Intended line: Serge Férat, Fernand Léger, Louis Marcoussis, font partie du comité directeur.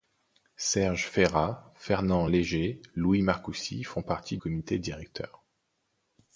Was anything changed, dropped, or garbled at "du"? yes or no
yes